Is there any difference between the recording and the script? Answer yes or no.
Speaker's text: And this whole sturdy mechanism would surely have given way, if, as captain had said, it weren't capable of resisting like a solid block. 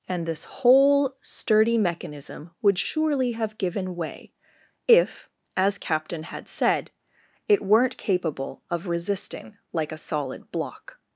no